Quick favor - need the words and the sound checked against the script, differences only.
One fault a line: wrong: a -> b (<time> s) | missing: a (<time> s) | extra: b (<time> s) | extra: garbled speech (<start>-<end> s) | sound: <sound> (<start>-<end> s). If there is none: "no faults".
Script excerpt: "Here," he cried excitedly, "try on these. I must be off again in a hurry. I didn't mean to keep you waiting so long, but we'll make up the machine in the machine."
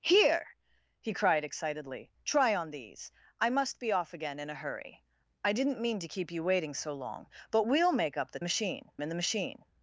no faults